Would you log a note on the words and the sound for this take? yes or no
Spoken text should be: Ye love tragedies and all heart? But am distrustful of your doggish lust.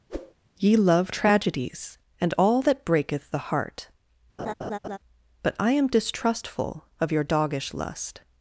yes